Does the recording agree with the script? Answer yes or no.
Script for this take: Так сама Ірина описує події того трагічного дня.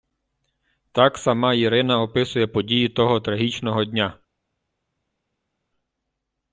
yes